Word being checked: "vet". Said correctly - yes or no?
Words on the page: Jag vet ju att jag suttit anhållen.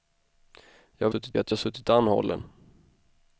no